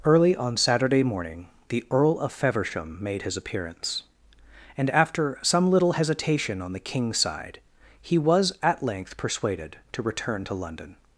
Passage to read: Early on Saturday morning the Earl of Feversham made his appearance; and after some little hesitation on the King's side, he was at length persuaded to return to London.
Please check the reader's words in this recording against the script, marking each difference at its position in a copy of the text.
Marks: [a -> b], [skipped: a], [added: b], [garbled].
Early on Saturday morning the Earl of Feversham made his appearance; and after some little hesitation on the King's side, he was at length persuaded to return to London.